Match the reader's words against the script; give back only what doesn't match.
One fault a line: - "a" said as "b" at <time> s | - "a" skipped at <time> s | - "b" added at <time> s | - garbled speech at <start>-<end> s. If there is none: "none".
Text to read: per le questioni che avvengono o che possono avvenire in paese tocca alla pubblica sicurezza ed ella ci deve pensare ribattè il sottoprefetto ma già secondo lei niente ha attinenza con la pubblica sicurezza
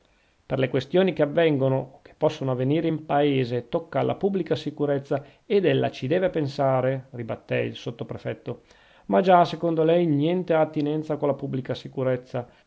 none